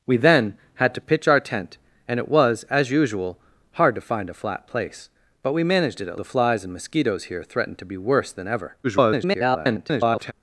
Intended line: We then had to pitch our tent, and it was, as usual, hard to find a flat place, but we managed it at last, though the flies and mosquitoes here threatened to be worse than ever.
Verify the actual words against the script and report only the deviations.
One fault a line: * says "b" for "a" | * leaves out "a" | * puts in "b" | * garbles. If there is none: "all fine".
* leaves out "last though"
* garbles